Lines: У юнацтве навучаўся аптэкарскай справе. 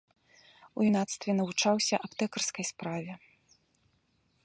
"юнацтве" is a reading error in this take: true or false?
false